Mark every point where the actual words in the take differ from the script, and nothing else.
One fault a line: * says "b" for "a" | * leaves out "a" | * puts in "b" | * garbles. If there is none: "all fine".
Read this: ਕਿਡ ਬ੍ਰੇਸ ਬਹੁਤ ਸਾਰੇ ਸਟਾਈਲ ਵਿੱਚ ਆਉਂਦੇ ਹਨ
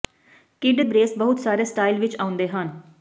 all fine